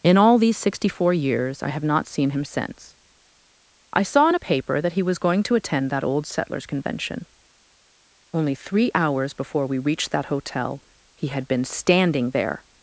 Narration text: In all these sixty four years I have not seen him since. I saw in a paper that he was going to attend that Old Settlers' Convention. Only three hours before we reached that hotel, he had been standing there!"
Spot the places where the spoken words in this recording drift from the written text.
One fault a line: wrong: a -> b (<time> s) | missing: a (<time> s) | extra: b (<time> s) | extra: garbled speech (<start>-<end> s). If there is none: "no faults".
no faults